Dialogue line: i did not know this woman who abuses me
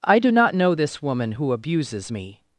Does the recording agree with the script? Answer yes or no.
no